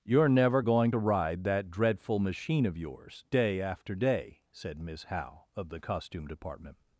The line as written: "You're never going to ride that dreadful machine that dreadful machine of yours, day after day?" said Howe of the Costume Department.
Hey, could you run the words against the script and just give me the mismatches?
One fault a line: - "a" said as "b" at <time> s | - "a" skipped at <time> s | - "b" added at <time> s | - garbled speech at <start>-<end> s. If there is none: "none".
- "that dreadful machine" skipped at 2.6 s
- "Miss" added at 4.8 s